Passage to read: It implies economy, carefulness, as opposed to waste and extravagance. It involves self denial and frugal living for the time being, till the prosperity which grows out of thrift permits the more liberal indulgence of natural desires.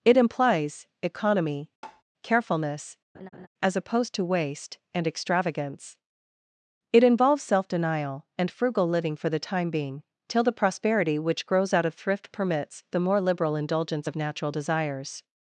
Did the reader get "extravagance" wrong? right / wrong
right